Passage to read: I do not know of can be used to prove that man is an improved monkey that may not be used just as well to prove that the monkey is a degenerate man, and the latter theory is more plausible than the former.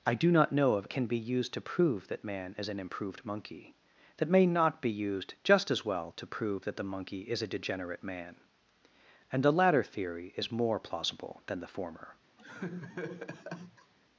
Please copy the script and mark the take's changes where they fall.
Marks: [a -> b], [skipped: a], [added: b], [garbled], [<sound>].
I do not know of can be used to prove that man is an improved monkey that may not be used just as well to prove that the monkey is a degenerate man, and the latter theory is more plausible than the former. [laugh]